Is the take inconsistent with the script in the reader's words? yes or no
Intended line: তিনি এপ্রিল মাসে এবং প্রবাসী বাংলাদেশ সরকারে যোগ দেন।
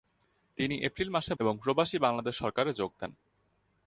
no